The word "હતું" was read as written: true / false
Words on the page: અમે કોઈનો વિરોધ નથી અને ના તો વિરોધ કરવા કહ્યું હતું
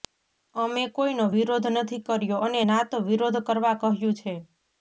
false